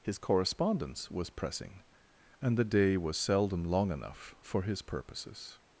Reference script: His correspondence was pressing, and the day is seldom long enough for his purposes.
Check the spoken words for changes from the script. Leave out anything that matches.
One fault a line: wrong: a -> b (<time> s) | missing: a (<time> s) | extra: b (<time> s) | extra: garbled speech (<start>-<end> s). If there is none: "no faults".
wrong: is -> was (3.0 s)